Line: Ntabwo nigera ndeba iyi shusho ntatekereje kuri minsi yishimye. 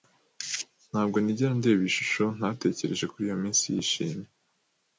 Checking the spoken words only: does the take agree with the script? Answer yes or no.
no